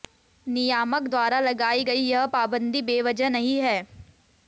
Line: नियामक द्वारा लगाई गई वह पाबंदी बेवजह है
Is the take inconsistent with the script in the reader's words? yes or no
yes